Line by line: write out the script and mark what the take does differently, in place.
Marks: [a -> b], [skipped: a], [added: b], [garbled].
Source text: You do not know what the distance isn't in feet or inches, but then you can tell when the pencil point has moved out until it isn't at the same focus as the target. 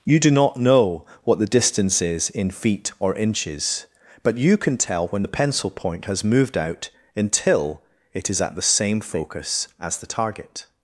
You do not know what the distance [isn't -> is] in feet or inches, but [skipped: then] you can tell when the pencil point has moved out until it [isn't -> is] at the same focus as the target.